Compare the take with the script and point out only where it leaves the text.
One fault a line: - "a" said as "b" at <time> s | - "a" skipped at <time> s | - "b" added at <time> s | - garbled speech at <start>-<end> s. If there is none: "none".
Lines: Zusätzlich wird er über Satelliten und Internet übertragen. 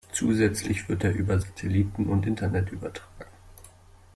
none